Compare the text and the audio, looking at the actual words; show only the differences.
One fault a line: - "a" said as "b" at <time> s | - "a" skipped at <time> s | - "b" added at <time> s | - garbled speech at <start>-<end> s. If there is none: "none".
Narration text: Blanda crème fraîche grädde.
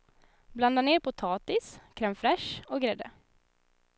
- "ner potatis" added at 0.8 s
- "och" added at 2.7 s